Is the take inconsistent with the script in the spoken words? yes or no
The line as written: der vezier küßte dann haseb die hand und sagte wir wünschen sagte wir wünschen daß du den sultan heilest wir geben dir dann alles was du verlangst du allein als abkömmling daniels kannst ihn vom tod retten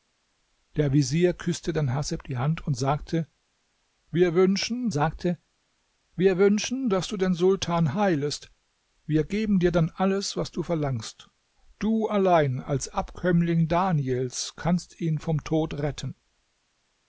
no